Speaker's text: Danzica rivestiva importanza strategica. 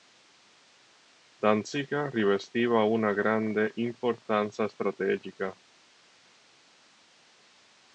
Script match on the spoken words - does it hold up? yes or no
no